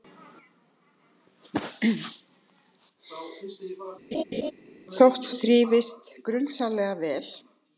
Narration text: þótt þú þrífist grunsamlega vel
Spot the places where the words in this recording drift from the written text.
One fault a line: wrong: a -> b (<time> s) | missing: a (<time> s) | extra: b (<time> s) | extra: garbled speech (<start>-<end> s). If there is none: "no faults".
missing: þú (5.3 s)